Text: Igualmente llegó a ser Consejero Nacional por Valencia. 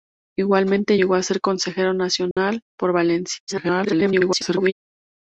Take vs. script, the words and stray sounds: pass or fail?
fail